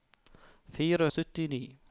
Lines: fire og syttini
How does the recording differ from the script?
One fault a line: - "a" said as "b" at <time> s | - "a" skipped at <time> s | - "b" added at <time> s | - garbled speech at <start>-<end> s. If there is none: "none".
none